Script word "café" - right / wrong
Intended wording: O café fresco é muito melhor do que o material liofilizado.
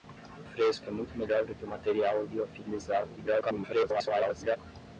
wrong